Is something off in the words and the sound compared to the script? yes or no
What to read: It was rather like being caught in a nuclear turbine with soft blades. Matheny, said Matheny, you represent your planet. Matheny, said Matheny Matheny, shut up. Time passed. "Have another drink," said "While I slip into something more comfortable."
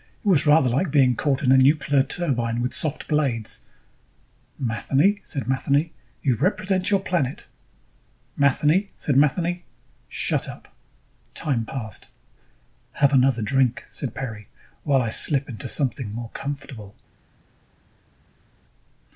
yes